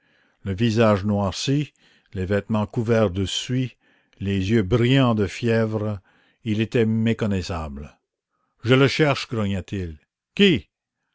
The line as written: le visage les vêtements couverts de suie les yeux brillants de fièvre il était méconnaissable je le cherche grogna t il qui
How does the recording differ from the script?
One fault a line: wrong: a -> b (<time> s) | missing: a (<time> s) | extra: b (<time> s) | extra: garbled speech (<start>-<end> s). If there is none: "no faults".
extra: noirci (1.1 s)